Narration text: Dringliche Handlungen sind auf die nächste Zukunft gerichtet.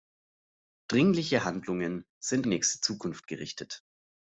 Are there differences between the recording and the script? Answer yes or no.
yes